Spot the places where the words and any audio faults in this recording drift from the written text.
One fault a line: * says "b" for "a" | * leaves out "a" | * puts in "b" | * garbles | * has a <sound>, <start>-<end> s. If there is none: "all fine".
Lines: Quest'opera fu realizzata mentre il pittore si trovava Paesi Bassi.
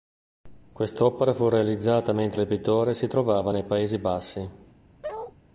* puts in "nei"
* has a bark, 5.0-5.3 s